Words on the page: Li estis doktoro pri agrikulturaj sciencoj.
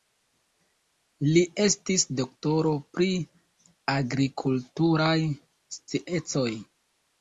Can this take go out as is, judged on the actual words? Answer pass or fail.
pass